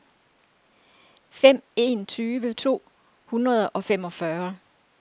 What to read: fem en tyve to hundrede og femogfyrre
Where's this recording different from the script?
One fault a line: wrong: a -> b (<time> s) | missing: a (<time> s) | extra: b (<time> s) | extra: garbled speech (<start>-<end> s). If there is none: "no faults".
no faults